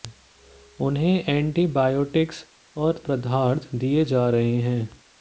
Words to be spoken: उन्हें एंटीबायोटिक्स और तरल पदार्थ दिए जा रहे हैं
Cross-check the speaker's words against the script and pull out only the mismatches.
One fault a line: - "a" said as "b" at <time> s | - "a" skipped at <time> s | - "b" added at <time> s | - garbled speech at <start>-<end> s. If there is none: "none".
- "तरल" skipped at 3.0 s